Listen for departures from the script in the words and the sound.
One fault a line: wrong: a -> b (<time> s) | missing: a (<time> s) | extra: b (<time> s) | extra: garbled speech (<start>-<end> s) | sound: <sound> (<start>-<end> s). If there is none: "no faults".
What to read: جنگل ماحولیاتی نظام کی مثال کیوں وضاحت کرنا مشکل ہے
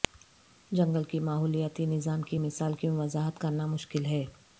extra: کی (1.0 s)